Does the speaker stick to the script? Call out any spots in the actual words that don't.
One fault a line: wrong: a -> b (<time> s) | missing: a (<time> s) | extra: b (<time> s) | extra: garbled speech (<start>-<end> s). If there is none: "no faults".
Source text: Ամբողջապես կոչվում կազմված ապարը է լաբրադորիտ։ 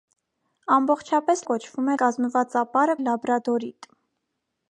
no faults